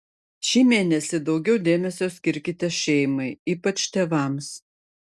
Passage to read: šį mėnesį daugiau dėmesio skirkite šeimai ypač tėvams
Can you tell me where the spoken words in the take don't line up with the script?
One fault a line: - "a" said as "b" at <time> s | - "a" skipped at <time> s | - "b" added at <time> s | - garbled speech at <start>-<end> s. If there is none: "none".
none